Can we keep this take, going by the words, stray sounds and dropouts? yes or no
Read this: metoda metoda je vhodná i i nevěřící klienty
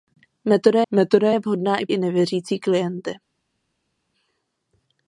yes